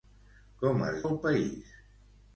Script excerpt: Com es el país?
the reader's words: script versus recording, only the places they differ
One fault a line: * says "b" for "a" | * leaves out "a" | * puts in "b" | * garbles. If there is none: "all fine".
all fine